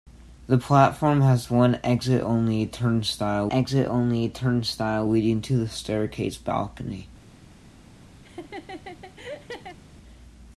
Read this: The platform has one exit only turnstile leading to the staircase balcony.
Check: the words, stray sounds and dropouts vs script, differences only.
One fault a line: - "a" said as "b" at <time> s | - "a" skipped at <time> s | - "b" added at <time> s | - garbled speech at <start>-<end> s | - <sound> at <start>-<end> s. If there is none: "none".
- "exit only turnstile" added at 3.5 s
- laugh at 8.2-9.8 s